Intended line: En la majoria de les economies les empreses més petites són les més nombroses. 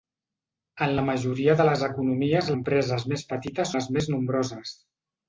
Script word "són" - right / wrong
wrong